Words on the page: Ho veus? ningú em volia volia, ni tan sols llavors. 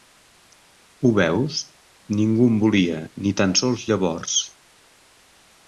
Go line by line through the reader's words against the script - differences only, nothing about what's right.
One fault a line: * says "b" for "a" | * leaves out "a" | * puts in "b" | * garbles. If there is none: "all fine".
* leaves out "volia"